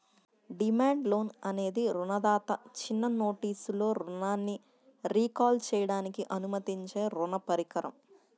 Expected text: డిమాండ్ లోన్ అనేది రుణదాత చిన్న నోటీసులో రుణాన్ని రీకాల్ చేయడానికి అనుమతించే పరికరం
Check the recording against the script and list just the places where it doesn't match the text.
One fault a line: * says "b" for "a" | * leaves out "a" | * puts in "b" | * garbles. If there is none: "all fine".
* puts in "రుణ"